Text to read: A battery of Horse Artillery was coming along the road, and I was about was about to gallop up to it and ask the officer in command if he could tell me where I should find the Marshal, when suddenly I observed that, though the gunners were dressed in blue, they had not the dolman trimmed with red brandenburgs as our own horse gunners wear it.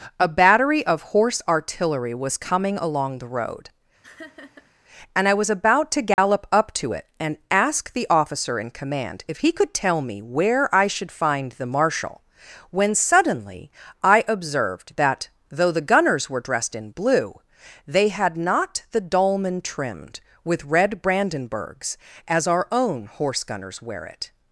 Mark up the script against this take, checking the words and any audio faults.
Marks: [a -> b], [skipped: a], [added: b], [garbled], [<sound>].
A battery of Horse Artillery was coming along the road, [laugh] and I was about [skipped: was about] to gallop [dropout] up to it and ask the officer in command if he could tell me where I should find the Marshal, when suddenly I observed that, though the gunners were dressed in blue, they had not the dolman trimmed with red brandenburgs as our own horse gunners wear it.